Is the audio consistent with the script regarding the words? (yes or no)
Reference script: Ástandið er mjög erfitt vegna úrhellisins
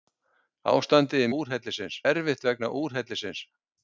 no